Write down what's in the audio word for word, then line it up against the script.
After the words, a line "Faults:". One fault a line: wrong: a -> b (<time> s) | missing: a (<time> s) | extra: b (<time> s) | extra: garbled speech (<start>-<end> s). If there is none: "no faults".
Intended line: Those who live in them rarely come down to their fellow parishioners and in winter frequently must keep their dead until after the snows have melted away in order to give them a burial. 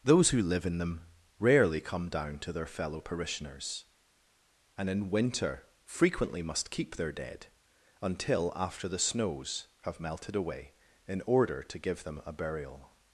Those who live in them rarely come down to their fellow parishioners and in winter frequently must keep their dead until after the snows have melted away in order to give them a burial.
Faults:
no faults